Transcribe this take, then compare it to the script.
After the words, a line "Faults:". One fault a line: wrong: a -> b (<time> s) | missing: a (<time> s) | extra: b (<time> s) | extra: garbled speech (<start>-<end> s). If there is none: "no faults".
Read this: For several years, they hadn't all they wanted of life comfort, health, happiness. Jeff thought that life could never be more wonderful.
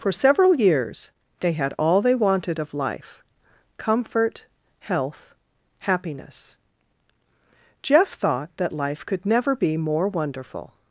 For several years, they had all they wanted of life comfort, health, happiness. Jeff thought that life could never be more wonderful.
Faults:
wrong: hadn't -> had (1.5 s)